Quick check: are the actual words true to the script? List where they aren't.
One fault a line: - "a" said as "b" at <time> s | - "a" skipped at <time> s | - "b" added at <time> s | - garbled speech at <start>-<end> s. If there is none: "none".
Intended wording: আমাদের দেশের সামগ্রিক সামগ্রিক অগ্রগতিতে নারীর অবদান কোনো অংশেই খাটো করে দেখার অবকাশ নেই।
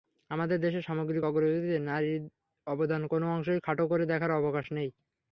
- "সামগ্রিক" skipped at 1.2 s